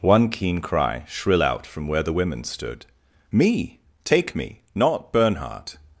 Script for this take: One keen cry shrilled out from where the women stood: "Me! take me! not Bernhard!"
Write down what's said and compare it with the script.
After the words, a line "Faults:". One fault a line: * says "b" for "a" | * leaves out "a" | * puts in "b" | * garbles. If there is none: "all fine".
One keen cry shrill out from where the women stood: "Me! take me! not Bernhard!"
Faults:
* says "shrill" for "shrilled"